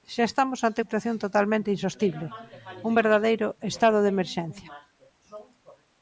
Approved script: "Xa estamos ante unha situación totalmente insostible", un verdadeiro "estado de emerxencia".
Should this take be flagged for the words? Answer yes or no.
yes